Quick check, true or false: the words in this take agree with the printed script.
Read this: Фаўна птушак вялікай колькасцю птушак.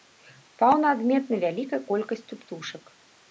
false